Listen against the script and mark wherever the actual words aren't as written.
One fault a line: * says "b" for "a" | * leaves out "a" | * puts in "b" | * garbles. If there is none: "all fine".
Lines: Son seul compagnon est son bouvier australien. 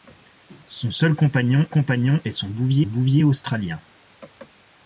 * puts in "compagnon"
* puts in "bouvier"